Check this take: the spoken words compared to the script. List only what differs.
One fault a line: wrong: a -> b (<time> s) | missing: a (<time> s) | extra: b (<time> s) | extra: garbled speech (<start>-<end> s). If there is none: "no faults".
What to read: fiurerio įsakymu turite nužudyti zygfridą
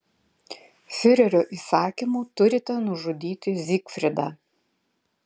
no faults